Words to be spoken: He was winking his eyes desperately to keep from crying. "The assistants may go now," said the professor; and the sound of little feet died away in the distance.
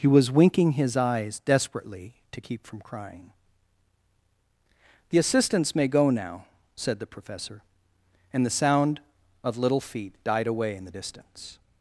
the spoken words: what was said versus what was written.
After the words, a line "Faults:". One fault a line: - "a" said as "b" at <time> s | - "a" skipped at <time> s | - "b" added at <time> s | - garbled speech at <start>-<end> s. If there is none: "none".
He was winking his eyes desperately to keep from crying. "The assistants may go now," said the professor; and the sound of little feet died away in the distance.
Faults:
none